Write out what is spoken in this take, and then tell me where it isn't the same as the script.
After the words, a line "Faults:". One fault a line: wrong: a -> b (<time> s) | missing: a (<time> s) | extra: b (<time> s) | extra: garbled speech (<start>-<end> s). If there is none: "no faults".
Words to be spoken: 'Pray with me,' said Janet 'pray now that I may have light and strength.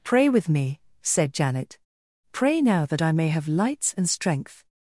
'Pray with me,' said Janet 'pray now that I may have lights and strength.
Faults:
wrong: light -> lights (3.5 s)